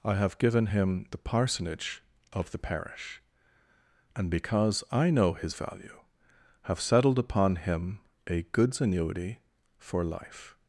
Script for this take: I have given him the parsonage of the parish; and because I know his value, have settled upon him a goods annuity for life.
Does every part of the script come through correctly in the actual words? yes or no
yes